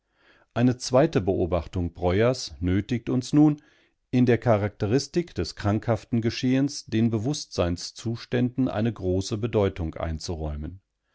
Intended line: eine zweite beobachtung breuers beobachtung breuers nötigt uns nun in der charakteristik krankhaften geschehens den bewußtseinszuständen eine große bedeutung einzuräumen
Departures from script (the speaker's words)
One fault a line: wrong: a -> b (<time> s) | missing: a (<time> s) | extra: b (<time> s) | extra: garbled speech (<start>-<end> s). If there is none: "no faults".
missing: beobachtung breuers (2.5 s)
extra: des (5.3 s)